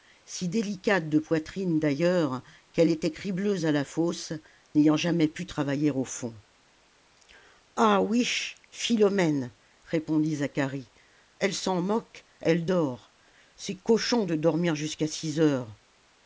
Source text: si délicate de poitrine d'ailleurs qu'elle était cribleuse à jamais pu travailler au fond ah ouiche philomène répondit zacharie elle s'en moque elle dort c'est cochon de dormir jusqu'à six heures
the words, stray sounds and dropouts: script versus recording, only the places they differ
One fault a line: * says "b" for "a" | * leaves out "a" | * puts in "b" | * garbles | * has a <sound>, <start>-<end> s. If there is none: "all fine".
* puts in "la fosse n'ayant"